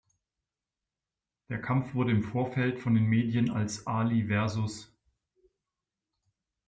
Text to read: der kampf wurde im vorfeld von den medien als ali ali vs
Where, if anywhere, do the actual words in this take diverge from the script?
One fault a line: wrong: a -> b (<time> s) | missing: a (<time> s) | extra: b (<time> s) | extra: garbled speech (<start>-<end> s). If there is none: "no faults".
missing: ali (4.3 s)